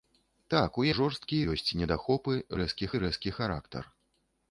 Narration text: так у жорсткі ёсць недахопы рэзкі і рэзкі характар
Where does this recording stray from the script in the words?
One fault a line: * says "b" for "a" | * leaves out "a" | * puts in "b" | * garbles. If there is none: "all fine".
all fine